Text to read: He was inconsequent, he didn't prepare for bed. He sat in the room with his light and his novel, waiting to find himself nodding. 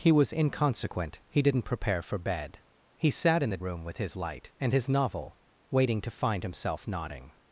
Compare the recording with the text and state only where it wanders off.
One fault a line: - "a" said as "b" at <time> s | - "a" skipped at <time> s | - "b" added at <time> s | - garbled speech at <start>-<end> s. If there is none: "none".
none